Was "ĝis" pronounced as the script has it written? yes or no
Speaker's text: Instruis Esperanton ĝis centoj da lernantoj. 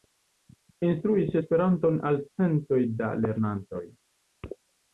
no